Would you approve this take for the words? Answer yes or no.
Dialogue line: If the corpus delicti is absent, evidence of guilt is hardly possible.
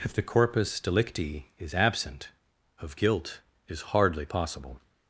no